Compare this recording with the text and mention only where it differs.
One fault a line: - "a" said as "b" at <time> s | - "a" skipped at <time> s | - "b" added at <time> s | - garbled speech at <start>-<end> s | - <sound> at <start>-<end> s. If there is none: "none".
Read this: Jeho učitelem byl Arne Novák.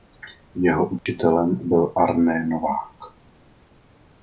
- dropout at 1.0-1.1 s